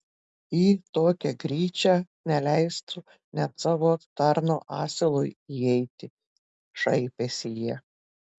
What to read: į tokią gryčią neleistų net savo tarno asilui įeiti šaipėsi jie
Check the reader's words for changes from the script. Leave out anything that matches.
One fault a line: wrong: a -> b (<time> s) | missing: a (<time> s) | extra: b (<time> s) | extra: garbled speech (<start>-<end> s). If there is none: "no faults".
no faults